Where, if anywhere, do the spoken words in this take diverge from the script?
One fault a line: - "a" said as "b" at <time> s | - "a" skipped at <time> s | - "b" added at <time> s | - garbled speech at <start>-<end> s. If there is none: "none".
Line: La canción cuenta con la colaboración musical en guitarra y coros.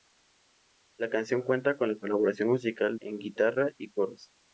none